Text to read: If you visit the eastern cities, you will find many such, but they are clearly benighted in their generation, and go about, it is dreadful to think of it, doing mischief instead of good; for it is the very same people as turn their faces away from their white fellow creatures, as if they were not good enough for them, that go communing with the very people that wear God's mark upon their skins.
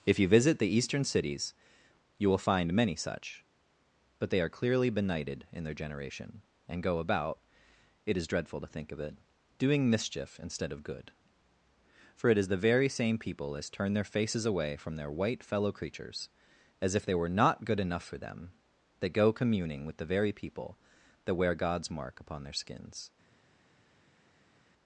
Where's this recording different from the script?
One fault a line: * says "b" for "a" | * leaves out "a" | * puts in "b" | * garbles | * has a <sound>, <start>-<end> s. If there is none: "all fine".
all fine